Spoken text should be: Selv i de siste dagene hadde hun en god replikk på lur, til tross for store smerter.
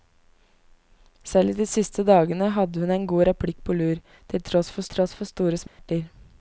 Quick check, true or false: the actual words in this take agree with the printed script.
false